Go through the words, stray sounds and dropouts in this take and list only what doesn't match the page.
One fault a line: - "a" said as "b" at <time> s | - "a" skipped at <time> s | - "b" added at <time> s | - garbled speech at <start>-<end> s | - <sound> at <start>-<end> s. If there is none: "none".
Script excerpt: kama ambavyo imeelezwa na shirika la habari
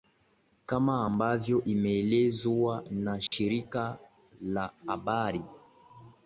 - dropout at 3.3-3.3 s